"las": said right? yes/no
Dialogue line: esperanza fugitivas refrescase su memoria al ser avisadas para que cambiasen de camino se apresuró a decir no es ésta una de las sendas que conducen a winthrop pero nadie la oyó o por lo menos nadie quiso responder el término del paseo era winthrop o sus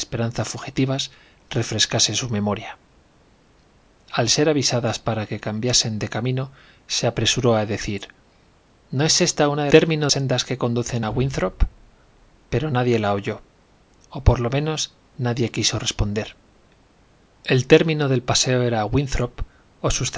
no